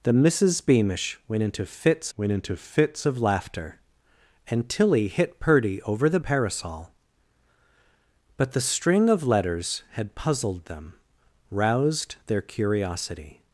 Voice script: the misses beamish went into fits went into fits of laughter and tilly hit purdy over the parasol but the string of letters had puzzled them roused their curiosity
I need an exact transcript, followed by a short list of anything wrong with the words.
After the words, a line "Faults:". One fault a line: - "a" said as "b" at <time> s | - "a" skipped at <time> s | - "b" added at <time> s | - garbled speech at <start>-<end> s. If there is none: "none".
the misses beamish went into fits went into fits of laughter and tilly hit purdy over the parasol but the string of letters had puzzled them roused their curiosity
Faults:
none